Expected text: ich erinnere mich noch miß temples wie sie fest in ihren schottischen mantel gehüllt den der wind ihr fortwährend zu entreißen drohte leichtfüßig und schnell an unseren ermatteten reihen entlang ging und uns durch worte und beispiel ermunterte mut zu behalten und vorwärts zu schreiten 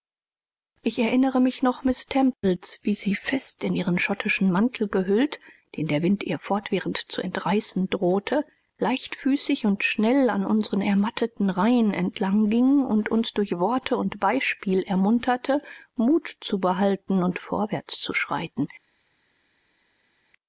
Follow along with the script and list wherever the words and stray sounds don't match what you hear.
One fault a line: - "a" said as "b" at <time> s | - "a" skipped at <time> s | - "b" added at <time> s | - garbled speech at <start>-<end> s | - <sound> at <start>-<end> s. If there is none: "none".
none